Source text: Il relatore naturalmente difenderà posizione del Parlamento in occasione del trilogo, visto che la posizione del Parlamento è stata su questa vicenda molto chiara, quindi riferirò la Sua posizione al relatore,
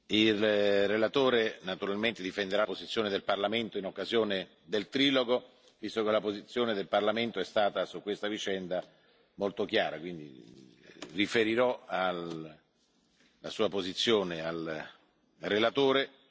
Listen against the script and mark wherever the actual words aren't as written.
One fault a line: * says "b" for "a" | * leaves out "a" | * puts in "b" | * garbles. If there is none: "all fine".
all fine